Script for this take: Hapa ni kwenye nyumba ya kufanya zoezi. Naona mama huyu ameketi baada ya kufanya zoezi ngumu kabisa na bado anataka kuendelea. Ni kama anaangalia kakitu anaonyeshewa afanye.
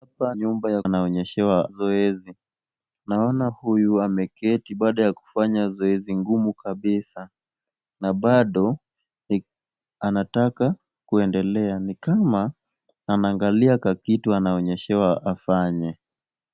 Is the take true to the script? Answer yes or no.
no